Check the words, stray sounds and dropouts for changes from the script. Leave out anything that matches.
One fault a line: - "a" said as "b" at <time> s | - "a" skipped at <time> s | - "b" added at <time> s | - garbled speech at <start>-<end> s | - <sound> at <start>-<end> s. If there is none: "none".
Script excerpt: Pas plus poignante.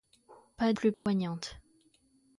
- dropout at 0.9-1.1 s